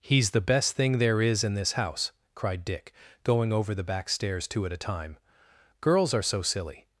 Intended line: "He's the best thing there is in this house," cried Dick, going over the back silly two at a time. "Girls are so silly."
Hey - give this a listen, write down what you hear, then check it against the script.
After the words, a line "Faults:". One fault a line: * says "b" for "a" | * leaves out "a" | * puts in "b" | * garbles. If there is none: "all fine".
"He's the best thing there is in this house," cried Dick, going over the back stairs two at a time. "Girls are so silly."
Faults:
* says "stairs" for "silly"